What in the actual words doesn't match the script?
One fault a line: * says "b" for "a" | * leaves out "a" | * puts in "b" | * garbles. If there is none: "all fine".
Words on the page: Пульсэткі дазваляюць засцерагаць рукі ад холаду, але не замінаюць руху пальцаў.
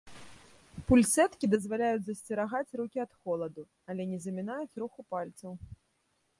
all fine